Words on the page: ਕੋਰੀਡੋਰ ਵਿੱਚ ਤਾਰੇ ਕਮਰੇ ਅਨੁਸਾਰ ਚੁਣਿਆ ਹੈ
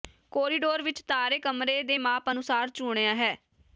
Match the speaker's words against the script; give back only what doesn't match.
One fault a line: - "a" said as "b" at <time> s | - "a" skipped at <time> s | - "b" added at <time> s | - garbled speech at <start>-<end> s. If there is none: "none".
- "ਦੇ ਮਾਪ" added at 1.8 s